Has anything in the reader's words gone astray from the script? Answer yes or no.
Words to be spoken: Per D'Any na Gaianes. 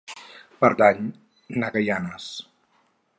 no